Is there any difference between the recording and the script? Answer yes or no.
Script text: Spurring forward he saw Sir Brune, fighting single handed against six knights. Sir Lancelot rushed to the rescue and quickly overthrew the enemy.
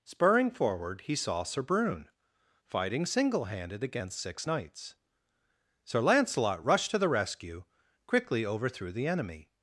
yes